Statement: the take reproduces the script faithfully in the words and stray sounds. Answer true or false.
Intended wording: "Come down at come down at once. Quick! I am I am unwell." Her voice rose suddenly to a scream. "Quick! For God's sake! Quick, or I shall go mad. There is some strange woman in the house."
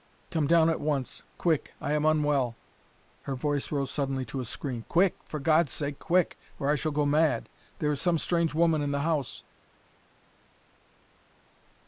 false